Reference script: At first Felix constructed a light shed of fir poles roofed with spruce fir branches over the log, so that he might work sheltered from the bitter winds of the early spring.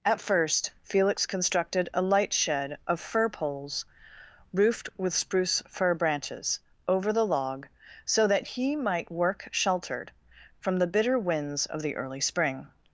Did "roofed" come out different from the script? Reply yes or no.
no